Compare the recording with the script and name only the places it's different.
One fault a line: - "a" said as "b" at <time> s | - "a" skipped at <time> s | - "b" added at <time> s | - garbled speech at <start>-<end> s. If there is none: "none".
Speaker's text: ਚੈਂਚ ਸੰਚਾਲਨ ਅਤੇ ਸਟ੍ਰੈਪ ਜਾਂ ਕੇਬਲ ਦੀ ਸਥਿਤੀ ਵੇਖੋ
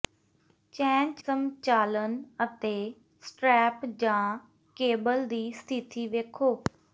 none